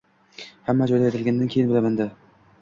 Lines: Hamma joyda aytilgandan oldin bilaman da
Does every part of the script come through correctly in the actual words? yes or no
no